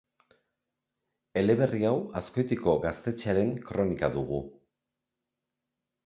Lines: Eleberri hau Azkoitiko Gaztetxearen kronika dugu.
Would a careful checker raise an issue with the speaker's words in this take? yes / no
no